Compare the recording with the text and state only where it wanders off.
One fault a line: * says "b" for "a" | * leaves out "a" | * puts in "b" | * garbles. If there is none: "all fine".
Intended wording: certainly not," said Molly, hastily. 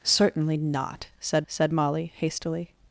* puts in "said"